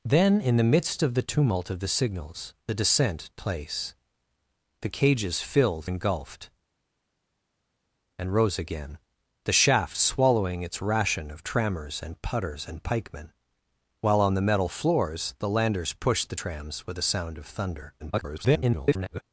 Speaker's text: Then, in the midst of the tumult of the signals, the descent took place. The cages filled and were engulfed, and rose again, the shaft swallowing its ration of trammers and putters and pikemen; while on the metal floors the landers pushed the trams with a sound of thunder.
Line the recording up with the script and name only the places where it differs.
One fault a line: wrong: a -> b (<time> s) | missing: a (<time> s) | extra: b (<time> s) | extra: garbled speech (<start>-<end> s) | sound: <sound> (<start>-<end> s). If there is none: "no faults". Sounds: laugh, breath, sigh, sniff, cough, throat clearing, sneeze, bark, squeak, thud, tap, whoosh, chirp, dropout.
missing: took (3.3 s)
missing: and were (5.9 s)
extra: garbled speech (18.0-19.2 s)